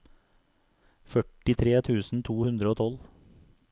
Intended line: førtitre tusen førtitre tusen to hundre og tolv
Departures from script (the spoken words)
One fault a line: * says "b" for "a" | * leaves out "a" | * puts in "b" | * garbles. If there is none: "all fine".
* leaves out "førtitre tusen"